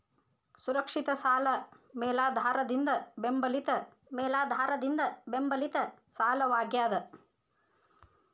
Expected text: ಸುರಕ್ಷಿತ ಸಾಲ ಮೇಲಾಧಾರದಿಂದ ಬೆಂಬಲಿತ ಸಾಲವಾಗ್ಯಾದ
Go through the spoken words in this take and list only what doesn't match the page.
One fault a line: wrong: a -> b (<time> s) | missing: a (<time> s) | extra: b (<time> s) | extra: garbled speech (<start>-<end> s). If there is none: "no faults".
extra: ಮೇಲಾಧಾರದಿಂದ ಬೆಂಬಲಿತ (4.1 s)